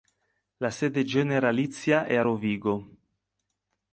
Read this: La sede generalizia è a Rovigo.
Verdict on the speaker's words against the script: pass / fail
pass